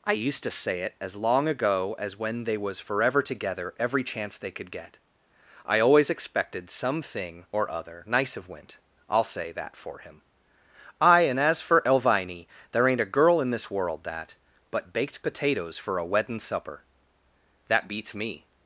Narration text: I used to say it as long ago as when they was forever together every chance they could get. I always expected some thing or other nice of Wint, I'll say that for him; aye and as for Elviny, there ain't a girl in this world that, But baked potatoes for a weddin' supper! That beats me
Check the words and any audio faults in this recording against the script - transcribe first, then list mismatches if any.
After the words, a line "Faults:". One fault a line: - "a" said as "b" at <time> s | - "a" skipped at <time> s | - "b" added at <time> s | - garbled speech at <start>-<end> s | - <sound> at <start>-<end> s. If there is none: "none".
I used to say it as long ago as when they was forever together every chance they could get. I always expected some thing or other nice of Wint, I'll say that for him; aye and as for Elviny, there ain't a girl in this world that, But baked potatoes for a weddin' supper! That beats me
Faults:
none